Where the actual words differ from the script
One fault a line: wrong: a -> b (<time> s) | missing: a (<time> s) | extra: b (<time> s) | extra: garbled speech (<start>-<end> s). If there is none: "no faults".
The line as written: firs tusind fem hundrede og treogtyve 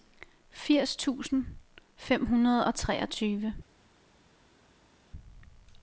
no faults